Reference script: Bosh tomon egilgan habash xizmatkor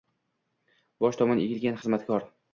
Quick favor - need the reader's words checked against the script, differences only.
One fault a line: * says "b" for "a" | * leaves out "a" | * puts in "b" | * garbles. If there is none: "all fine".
* leaves out "habash"